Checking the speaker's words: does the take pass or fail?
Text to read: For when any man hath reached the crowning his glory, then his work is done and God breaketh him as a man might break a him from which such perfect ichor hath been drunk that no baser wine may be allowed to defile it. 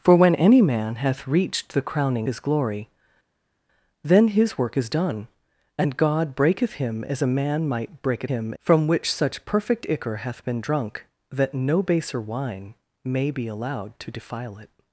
pass